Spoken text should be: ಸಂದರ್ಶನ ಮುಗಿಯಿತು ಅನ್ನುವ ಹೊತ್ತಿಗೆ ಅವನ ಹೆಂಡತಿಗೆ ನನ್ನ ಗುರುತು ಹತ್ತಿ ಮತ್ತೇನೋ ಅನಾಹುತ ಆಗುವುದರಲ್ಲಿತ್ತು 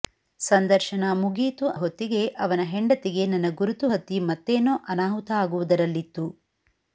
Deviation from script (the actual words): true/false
true